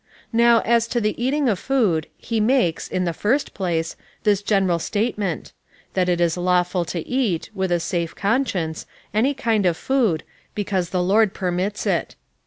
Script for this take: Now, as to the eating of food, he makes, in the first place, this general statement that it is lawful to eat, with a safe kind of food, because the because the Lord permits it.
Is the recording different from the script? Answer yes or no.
yes